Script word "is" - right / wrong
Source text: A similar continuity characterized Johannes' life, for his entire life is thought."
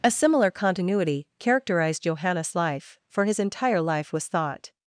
wrong